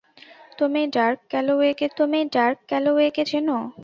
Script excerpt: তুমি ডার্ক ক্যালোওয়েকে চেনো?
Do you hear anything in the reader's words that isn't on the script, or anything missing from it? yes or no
yes